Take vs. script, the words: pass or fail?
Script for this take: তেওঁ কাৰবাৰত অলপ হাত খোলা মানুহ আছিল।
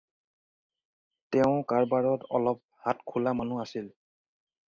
pass